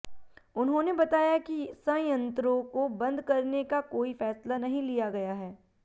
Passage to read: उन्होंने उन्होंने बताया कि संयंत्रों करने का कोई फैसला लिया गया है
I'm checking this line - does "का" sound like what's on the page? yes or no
yes